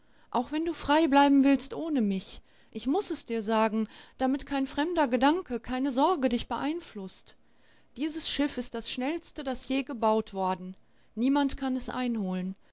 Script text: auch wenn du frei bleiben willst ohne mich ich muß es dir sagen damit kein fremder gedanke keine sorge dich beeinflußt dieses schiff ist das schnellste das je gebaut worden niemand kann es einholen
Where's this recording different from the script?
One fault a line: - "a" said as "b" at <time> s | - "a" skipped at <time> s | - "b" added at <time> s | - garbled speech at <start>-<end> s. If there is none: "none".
none